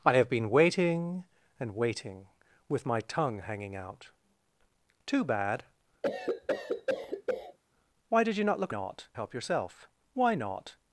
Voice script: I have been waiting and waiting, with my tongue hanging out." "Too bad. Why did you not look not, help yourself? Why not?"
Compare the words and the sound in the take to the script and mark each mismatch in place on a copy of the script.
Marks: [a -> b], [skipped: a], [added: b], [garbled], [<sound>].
I have been waiting and waiting, with my tongue hanging out." "Too bad. [cough] Why did you not look not, help yourself? Why not?"